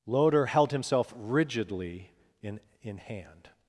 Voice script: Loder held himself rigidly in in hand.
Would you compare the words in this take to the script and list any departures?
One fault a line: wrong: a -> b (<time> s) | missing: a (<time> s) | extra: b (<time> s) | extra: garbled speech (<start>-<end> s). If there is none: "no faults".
no faults